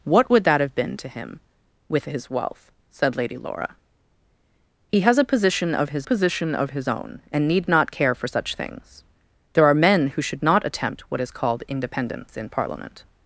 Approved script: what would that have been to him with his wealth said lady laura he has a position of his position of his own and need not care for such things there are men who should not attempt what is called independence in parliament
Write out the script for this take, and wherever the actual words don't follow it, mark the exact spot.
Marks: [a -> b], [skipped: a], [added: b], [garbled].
what would that have been to him with his wealth said lady laura he has a position of his position of his own and need not care for such things there are men who should not attempt what is called independence in parliament